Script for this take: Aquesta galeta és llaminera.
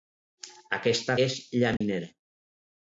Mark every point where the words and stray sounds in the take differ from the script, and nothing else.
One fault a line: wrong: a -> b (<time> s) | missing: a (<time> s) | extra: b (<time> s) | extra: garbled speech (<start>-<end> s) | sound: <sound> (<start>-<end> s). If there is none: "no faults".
missing: galeta (1.2 s)
sound: dropout (1.8-1.8 s)